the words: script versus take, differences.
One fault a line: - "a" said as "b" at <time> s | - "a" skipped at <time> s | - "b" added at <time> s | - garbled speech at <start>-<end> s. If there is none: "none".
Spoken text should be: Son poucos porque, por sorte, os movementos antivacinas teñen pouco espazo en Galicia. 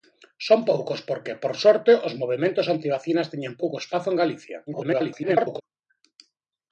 - garbled speech at 4.7-5.6 s